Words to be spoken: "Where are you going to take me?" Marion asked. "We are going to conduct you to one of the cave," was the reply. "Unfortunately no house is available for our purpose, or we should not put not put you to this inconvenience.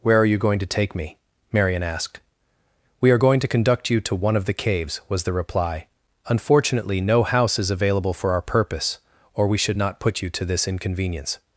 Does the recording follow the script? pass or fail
fail